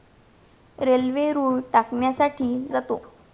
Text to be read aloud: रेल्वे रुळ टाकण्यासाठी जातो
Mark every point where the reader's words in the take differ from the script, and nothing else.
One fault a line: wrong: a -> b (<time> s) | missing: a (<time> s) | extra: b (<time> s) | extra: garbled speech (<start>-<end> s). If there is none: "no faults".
no faults